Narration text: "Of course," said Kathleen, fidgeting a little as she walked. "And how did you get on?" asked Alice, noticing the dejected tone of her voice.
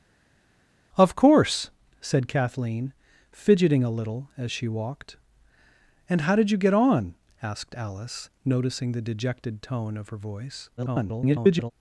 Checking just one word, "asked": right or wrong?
right